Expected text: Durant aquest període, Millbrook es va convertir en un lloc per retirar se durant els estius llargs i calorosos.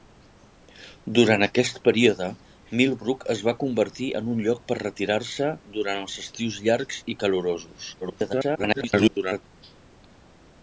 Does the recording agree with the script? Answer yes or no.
no